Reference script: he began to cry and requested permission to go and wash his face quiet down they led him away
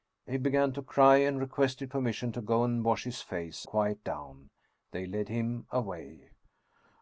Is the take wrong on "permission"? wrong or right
right